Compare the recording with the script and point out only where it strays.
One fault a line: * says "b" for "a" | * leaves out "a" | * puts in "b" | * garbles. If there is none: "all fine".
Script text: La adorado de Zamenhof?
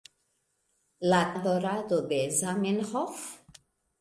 all fine